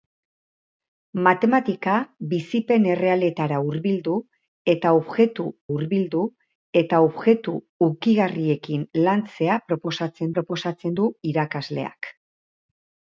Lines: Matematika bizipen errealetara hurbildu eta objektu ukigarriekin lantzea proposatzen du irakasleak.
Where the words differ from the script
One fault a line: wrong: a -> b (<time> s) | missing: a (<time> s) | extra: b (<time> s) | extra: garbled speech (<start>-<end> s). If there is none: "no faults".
extra: hurbildu eta objektu (5.7 s)
extra: proposatzen (10.3 s)